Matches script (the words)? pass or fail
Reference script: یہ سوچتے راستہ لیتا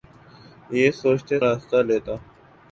pass